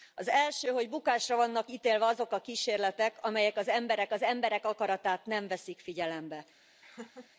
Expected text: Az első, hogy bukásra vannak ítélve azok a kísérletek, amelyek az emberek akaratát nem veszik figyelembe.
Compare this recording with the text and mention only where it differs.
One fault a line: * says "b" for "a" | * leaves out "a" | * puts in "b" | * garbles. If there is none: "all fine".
* puts in "az emberek"